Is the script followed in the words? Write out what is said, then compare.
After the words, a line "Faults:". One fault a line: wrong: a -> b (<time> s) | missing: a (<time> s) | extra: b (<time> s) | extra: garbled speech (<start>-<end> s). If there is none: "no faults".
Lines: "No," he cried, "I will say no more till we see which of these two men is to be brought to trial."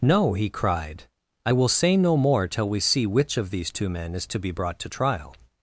"No," he cried, "I will say no more till we see which of these two men is to be brought to trial."
Faults:
no faults